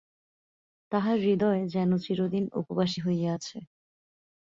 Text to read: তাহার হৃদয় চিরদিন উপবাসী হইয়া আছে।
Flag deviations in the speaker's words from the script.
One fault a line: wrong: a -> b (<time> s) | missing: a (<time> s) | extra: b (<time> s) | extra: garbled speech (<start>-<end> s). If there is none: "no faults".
extra: যেন (1.7 s)